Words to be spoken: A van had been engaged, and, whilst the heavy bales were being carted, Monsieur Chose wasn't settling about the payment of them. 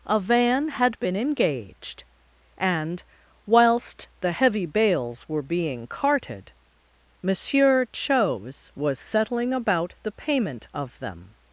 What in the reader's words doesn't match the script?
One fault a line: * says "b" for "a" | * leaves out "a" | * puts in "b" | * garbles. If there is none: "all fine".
* says "was" for "wasn't"